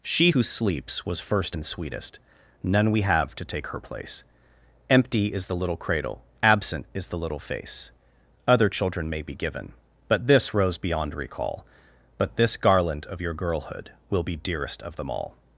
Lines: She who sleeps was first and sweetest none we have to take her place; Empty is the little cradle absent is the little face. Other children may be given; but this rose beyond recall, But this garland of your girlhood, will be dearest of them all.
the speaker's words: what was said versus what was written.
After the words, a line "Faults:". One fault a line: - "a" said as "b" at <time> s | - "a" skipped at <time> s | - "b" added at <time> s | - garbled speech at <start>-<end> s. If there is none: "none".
She who sleeps was first and sweetest none we have to take her place; Empty is the little cradle absent is the little face. Other children may be given; but this rose beyond recall, But this garland of your girlhood, will be dearest of them all.
Faults:
none